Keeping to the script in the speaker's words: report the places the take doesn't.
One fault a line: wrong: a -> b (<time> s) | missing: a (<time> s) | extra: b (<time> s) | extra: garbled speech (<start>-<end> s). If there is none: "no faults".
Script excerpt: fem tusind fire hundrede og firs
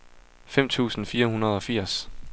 no faults